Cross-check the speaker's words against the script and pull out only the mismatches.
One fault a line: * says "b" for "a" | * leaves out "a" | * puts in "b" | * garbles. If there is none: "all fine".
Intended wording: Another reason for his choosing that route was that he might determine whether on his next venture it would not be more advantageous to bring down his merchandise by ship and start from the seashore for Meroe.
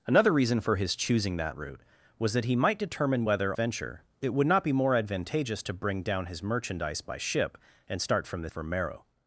* leaves out "on his next"
* leaves out "seashore"